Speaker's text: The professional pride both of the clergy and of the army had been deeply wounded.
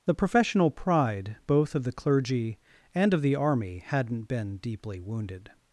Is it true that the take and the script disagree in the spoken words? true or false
true